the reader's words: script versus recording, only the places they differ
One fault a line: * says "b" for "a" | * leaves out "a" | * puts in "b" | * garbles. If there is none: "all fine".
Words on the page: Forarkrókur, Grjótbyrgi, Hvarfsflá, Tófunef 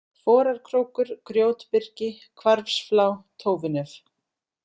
all fine